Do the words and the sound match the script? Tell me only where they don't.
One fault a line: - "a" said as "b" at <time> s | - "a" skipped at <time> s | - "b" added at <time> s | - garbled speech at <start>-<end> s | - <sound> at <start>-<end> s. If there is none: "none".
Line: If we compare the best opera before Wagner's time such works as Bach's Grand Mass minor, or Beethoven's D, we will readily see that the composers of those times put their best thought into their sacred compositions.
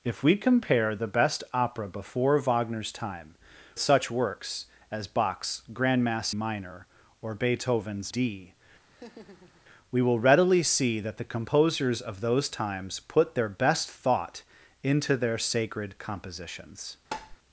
- laugh at 8.9-9.6 s
- tap at 17.1-17.4 s